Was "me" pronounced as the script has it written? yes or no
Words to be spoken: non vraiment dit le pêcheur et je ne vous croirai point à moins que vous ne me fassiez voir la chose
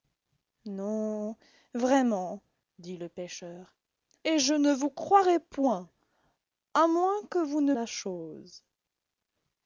no